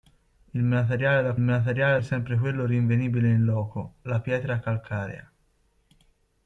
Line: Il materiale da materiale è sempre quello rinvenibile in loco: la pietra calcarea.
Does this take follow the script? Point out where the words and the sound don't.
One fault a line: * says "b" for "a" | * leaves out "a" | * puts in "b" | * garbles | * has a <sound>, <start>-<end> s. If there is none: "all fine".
all fine